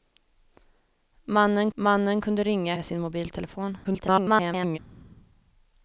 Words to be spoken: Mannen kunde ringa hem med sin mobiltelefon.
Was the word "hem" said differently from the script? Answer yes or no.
yes